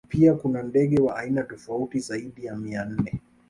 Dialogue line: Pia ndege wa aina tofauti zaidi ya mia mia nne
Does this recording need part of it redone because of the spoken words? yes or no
yes